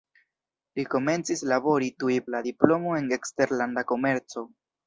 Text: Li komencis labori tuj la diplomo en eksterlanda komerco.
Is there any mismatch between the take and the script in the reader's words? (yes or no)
no